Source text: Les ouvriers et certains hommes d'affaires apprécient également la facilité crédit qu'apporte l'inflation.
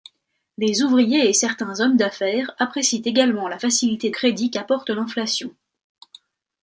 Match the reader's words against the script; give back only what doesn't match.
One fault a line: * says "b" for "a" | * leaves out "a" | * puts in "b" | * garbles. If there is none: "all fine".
all fine